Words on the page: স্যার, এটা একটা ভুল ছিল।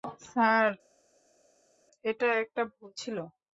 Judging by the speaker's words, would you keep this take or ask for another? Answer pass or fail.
pass